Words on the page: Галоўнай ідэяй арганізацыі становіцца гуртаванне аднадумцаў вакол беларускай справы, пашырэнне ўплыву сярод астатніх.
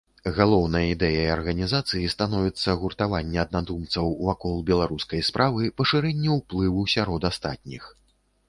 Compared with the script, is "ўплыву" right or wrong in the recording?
right